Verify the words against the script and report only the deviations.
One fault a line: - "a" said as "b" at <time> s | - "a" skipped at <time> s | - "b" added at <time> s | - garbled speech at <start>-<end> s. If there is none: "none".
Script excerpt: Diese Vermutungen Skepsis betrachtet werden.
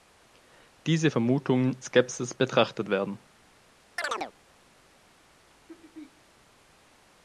none